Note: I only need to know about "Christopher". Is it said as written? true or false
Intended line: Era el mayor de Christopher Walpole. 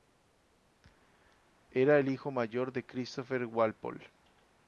true